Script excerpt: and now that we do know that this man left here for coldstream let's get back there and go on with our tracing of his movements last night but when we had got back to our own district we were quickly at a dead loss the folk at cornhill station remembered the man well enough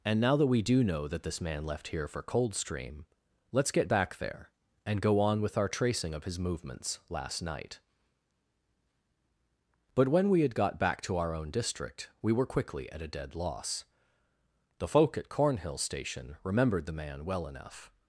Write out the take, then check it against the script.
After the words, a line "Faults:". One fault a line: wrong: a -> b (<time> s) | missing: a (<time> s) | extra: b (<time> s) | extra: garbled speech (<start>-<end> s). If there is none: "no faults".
and now that we do know that this man left here for coldstream let's get back there and go on with our tracing of his movements last night but when we had got back to our own district we were quickly at a dead loss the folk at cornhill station remembered the man well enough
Faults:
no faults